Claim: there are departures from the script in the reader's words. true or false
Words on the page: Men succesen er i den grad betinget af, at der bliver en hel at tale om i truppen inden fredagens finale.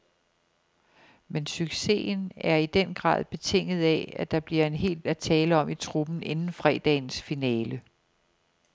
false